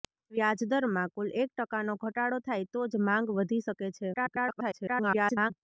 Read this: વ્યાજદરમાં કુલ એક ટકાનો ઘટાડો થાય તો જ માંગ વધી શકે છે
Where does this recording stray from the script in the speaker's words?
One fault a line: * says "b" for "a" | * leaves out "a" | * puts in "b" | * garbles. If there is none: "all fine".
* garbles